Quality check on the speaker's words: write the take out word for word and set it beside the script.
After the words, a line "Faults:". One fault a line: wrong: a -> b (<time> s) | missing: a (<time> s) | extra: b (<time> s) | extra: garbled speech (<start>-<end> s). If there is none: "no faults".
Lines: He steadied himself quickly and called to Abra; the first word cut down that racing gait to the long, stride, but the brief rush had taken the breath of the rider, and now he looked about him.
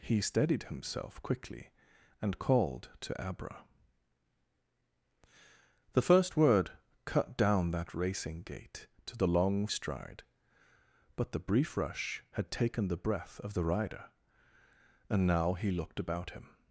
He steadied himself quickly and called to Abra; the first word cut down that racing gait to the long, stride, but the brief rush had taken the breath of the rider, and now he looked about him.
Faults:
no faults